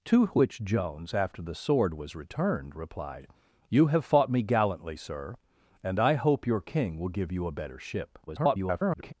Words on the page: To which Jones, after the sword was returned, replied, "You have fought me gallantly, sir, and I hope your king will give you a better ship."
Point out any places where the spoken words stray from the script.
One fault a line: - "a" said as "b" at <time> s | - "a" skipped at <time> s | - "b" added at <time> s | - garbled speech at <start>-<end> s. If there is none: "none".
- garbled speech at 8.3-9.1 s